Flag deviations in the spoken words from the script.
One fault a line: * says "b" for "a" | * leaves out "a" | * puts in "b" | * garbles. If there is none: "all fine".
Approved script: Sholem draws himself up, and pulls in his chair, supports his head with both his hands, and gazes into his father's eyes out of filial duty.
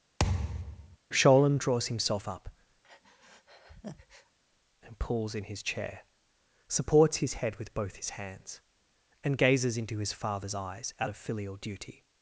all fine